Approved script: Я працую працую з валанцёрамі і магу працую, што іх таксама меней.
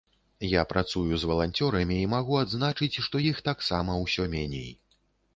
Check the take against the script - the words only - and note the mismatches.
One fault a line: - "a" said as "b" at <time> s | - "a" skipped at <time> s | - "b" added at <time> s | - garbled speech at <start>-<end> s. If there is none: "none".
- "працую" skipped at 1.2 s
- "працую" said as "адзначыць" at 2.4 s
- "ўсё" added at 4.0 s